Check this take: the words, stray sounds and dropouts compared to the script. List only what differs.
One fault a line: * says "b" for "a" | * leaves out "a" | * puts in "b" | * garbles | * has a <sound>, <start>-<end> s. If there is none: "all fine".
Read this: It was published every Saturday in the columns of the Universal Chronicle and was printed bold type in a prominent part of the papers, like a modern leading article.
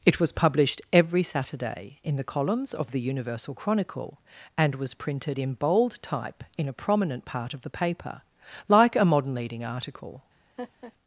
* puts in "in"
* says "paper" for "papers"
* has a laugh, 10.6-10.9 s